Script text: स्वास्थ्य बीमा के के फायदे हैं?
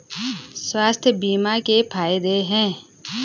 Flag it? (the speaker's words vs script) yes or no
yes